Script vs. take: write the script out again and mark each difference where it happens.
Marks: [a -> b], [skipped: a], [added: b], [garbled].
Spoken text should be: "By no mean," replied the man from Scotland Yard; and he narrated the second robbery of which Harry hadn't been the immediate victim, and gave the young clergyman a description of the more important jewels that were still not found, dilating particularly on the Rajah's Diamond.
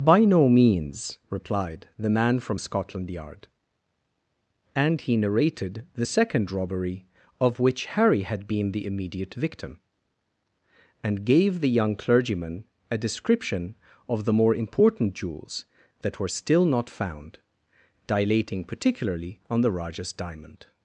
"By no [mean," -> means] replied the man from Scotland Yard; and he narrated the second robbery of which Harry [hadn't -> had] been the immediate victim, and gave the young clergyman a description of the more important jewels that were still not found, dilating particularly on the Rajah's Diamond.